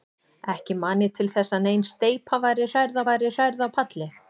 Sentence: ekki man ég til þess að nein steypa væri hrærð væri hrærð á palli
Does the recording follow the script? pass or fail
pass